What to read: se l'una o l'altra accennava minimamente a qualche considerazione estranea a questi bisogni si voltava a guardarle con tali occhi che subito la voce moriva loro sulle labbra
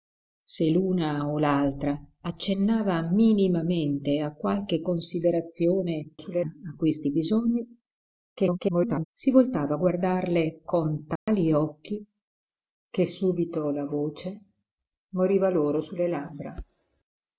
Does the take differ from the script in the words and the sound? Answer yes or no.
yes